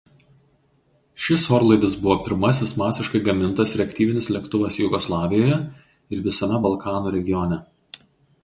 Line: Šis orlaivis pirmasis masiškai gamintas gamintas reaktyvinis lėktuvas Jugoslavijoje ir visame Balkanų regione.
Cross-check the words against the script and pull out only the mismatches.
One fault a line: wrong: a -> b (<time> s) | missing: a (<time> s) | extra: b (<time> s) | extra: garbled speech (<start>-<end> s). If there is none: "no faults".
extra: buvo (2.0 s)
missing: gamintas (3.8 s)